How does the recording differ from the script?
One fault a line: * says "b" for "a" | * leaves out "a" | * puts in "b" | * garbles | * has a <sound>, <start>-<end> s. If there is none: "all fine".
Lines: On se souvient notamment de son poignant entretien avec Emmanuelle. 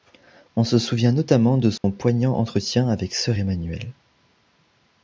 * has a dropout, 1.8-1.8 s
* puts in "Sœur"